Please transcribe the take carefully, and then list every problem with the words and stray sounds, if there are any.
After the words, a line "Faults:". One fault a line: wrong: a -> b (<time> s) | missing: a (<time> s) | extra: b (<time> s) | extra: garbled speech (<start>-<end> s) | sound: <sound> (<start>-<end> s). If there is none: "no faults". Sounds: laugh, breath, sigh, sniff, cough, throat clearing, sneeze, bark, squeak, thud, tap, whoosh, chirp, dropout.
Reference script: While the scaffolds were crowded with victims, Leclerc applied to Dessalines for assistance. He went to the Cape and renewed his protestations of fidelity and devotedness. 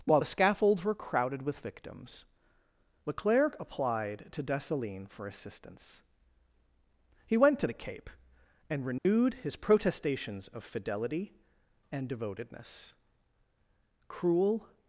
While the scaffolds were crowded with victims, Leclerc applied to Dessalines for assistance. He went to the Cape and renewed his protestations of fidelity and devotedness. Cruel
Faults:
sound: dropout (9.0-9.1 s)
extra: Cruel (14.1 s)